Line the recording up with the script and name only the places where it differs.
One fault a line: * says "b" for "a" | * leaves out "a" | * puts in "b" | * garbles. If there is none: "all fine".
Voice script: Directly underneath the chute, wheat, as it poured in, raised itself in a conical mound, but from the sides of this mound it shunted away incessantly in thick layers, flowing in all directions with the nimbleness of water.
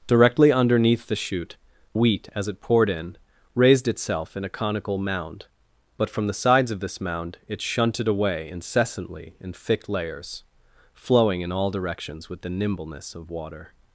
all fine